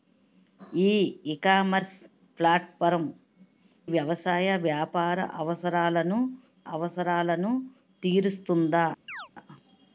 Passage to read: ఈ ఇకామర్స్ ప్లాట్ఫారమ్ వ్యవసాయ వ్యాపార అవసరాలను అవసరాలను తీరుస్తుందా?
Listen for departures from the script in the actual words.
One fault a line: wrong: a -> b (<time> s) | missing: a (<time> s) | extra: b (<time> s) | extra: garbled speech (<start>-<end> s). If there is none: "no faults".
no faults